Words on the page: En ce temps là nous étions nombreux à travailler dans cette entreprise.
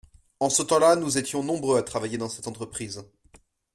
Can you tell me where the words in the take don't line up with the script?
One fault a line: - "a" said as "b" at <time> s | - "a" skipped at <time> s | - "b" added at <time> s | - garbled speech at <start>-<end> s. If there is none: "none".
none